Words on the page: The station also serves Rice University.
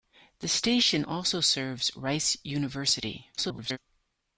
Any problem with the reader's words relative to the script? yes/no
yes